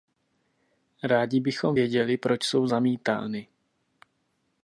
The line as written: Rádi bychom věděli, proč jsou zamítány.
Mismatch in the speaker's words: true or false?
false